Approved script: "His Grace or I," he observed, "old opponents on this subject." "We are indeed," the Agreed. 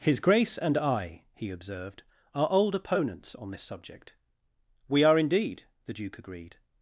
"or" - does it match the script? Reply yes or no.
no